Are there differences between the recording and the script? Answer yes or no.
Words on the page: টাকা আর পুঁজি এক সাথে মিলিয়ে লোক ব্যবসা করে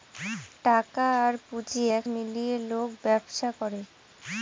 yes